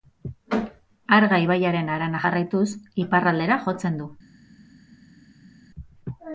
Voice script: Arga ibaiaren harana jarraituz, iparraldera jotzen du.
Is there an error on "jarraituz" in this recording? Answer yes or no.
no